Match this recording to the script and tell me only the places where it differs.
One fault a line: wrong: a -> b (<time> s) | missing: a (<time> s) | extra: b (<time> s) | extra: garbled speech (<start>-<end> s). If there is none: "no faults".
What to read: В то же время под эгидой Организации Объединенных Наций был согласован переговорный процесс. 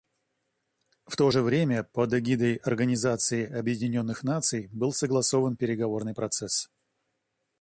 no faults